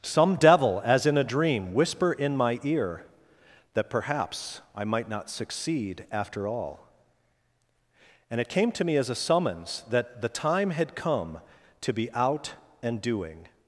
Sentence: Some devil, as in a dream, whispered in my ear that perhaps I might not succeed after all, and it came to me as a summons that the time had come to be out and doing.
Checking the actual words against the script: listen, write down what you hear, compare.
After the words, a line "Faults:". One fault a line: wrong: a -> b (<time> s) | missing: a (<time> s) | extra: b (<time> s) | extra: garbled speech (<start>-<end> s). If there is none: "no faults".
Some devil, as in a dream, whisper in my ear that perhaps I might not succeed after all, and it came to me as a summons that the time had come to be out and doing.
Faults:
wrong: whispered -> whisper (1.7 s)